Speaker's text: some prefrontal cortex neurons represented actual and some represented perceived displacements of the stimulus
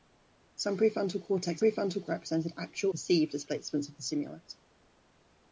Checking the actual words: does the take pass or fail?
fail